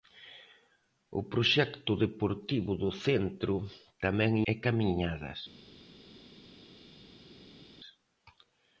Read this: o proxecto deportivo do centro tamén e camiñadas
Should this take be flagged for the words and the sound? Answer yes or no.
no